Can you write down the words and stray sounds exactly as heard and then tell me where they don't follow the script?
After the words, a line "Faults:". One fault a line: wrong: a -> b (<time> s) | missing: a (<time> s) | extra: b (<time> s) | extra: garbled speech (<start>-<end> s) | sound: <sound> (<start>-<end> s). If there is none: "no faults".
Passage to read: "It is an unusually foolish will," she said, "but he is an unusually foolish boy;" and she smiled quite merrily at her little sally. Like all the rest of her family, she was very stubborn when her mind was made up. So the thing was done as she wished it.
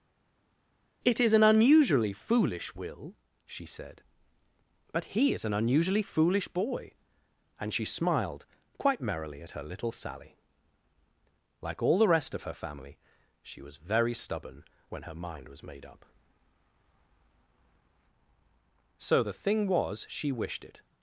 "It is an unusually foolish will," she said, "but he is an unusually foolish boy;" and she smiled quite merrily at her little sally. Like all the rest of her family, she was very stubborn when her mind was made up. So the thing was she wished it.
Faults:
missing: done as (20.0 s)